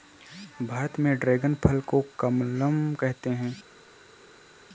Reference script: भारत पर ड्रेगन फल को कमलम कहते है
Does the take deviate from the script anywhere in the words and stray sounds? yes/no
yes